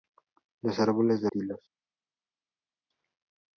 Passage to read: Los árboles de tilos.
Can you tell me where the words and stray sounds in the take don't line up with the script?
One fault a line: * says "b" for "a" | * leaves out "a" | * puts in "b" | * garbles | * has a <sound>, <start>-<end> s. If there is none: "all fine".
all fine